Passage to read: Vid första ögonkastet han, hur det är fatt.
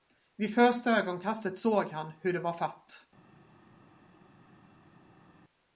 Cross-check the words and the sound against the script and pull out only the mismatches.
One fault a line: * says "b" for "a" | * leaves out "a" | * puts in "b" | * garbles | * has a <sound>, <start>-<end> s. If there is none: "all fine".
* puts in "såg"
* says "var" for "är"